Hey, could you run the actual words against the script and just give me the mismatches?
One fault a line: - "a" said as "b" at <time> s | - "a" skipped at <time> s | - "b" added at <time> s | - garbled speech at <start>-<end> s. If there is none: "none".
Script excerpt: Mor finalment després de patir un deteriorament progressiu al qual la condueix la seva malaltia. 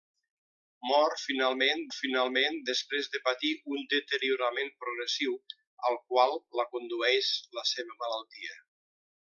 - "finalment" added at 2.0 s